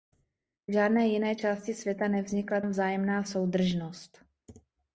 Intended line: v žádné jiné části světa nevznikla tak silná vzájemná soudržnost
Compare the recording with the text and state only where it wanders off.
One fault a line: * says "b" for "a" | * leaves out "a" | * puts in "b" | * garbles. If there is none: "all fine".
* leaves out "tak silná"